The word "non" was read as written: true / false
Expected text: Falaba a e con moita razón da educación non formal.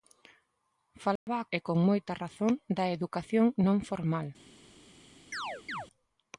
true